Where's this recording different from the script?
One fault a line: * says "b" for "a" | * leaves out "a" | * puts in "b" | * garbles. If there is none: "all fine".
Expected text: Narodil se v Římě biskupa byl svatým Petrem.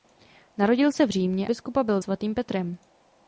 all fine